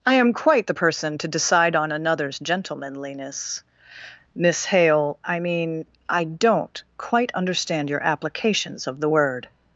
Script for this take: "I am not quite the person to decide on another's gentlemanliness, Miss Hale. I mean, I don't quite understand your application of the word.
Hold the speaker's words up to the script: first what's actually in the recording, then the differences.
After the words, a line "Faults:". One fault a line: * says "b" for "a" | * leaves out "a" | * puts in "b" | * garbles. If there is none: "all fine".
"I am quite the person to decide on another's gentlemanliness, Miss Hale. I mean, I don't quite understand your applications of the word.
Faults:
* leaves out "not"
* says "applications" for "application"